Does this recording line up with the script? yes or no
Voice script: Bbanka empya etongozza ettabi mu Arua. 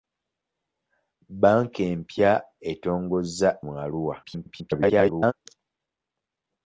no